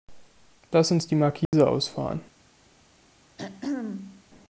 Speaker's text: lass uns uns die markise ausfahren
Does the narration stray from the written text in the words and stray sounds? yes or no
yes